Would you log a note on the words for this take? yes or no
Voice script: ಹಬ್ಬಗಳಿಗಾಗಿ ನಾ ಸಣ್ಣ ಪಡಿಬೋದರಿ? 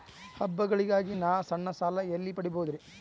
yes